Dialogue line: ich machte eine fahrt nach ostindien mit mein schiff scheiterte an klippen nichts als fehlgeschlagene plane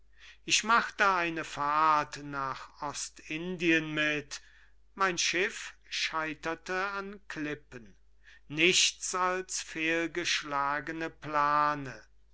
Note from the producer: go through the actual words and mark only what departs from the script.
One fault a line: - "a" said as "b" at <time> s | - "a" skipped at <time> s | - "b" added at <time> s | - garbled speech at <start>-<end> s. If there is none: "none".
none